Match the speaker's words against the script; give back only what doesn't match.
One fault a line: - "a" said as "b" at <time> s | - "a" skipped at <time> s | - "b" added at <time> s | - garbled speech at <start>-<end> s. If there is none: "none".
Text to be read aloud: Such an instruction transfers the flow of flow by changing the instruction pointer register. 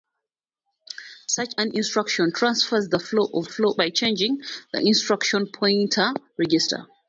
none